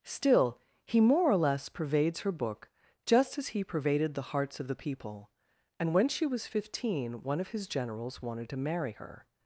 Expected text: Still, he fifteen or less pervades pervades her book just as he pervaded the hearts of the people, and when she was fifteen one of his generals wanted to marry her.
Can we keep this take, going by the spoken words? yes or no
no